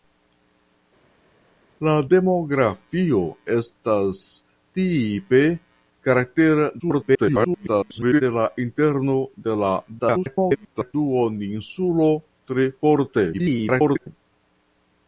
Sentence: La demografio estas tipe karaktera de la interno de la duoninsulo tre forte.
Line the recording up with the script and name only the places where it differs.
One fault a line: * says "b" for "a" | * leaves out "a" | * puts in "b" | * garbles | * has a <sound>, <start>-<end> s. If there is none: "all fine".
* garbles
* garbles
* garbles